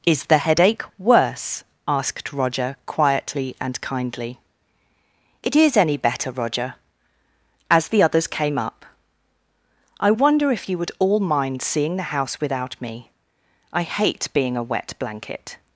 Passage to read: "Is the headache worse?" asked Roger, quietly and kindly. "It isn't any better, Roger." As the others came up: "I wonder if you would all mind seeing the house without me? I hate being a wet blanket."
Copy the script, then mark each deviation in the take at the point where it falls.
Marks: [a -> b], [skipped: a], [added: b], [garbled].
"Is the headache worse?" asked Roger, quietly and kindly. "It [isn't -> is] any better, Roger." As the others came up: "I wonder if you would all mind seeing the house without me? I hate being a wet blanket."